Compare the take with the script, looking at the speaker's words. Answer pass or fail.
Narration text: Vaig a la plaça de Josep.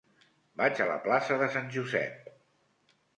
fail